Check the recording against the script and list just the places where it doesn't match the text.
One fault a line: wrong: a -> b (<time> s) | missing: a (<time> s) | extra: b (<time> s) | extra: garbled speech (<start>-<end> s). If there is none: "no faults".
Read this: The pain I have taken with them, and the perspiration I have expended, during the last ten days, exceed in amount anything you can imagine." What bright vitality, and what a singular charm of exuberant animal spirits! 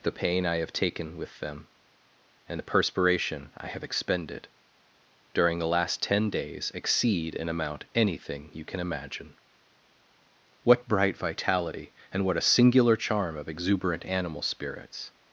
no faults